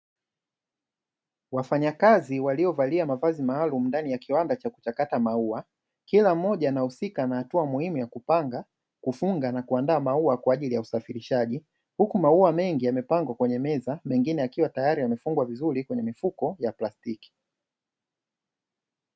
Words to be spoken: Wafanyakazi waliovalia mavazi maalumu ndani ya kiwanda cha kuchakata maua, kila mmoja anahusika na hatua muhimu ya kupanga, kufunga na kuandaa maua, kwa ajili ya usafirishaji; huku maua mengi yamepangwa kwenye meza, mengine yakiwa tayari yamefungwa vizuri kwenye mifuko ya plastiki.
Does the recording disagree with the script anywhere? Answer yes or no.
no